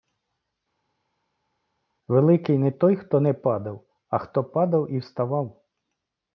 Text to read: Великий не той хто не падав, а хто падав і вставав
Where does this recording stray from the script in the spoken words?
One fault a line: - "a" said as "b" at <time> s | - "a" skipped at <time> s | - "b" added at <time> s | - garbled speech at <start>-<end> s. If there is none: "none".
none